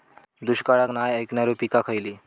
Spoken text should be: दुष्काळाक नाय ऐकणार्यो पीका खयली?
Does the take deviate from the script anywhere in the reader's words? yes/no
no